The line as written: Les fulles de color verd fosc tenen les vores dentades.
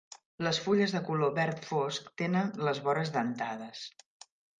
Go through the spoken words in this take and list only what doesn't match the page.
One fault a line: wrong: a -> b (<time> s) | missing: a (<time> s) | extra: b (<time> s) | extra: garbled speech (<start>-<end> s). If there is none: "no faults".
no faults